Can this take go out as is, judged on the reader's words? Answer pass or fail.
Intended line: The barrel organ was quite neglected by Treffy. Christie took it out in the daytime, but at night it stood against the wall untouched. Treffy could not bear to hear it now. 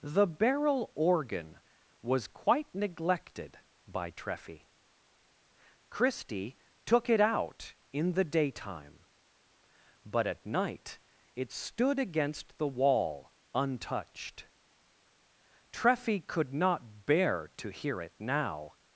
pass